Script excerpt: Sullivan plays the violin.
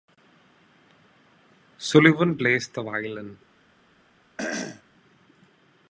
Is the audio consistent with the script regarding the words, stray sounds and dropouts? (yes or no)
no